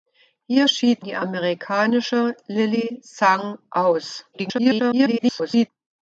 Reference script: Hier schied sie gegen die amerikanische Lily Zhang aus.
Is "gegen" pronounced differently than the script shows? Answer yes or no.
yes